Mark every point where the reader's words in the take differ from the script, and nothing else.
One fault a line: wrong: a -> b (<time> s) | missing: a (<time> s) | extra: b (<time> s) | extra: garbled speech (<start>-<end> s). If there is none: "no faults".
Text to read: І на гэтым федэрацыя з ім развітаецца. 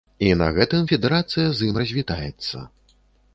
no faults